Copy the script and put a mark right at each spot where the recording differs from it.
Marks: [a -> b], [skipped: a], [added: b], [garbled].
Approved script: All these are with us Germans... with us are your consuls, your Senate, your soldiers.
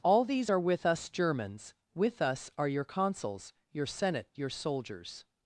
All these are with us Germans... with us are your consuls, your Senate, your soldiers.